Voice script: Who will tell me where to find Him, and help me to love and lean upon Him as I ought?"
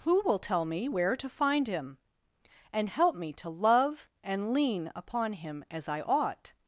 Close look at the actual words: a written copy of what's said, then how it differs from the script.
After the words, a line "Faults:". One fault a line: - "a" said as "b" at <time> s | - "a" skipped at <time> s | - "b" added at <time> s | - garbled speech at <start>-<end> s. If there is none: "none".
Who will tell me where to find Him, and help me to love and lean upon Him as I ought?"
Faults:
none